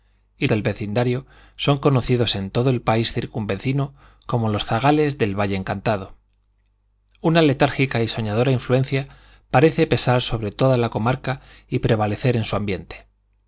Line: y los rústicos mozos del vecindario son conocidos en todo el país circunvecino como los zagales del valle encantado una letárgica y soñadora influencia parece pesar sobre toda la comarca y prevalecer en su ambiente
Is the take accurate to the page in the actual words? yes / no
no